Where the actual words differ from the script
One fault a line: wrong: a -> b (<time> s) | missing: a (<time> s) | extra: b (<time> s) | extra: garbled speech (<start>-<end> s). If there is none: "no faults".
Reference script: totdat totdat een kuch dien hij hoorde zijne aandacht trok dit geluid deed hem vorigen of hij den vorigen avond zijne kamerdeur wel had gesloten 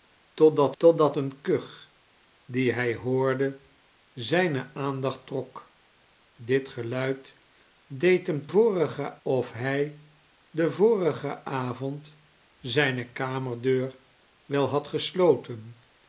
no faults